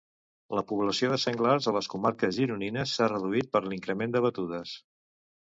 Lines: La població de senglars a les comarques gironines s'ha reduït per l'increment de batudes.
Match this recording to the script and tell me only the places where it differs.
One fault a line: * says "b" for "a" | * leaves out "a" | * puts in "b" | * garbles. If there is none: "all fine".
all fine